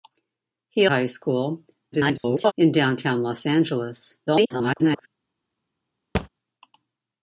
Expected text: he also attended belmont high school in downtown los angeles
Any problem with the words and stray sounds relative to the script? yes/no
yes